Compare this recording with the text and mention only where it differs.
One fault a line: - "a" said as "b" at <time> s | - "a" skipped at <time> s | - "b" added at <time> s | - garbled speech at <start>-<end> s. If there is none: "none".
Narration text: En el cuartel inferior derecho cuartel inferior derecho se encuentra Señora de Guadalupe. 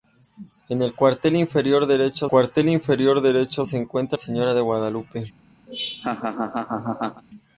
none